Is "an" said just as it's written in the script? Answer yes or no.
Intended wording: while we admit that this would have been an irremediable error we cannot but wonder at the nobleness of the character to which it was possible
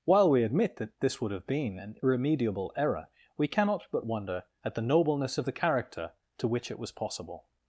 yes